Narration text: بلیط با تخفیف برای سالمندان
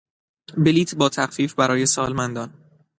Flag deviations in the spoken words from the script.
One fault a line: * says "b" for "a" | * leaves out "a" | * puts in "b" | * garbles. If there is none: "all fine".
all fine